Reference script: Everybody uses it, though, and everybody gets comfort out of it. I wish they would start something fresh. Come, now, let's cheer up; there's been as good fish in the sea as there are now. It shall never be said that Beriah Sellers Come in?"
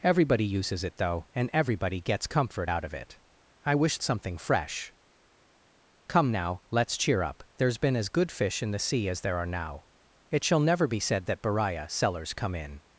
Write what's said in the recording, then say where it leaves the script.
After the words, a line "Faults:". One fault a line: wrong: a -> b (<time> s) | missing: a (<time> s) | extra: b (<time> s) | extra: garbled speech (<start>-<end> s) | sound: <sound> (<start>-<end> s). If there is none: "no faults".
Everybody uses it, though, and everybody gets comfort out of it. I wish something fresh. Come, now, let's cheer up; there's been as good fish in the sea as there are now. It shall never be said that Beriah Sellers Come in?"
Faults:
missing: they would start (4.0 s)